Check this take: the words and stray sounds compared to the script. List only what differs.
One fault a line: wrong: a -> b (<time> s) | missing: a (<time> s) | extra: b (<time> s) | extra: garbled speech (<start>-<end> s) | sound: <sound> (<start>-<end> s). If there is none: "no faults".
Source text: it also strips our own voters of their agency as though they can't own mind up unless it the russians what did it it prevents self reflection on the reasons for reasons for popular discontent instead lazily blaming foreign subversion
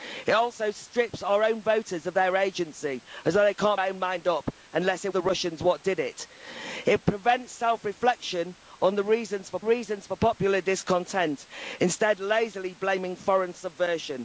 no faults